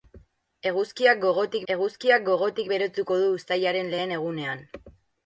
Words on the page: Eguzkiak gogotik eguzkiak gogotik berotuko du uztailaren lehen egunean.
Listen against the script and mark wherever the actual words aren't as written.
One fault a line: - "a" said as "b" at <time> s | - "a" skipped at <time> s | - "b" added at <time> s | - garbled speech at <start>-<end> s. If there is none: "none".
none